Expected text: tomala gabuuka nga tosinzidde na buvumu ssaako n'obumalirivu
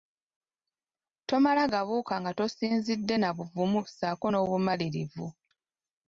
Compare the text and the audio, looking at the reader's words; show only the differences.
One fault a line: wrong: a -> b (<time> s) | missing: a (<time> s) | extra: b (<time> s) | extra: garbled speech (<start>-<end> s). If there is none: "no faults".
no faults